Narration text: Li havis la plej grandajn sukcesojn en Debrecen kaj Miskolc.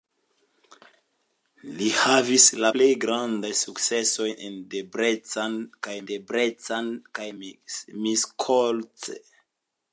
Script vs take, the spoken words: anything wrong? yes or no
yes